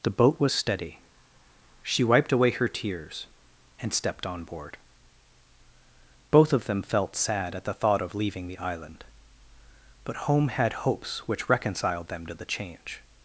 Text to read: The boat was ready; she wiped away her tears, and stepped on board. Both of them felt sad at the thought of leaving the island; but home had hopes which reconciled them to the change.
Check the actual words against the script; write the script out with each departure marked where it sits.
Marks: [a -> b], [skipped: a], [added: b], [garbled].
The boat was [ready; -> steady] she wiped away her tears, and stepped on board. Both of them felt sad at the thought of leaving the island; but home had hopes which reconciled them to the change.